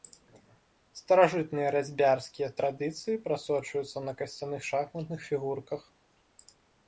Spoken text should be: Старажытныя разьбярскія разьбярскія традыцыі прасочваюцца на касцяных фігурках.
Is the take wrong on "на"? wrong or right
right